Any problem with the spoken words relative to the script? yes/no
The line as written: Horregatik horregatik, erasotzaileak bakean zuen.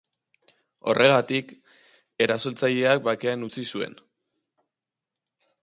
yes